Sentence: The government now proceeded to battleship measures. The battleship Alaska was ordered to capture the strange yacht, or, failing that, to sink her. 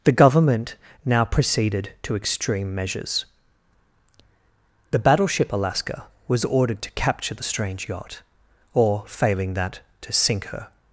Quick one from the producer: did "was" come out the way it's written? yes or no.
yes